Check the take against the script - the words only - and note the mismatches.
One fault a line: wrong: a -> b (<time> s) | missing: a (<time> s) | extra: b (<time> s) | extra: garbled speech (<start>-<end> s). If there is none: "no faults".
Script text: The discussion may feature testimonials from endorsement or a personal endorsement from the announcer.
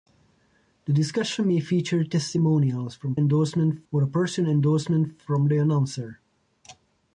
no faults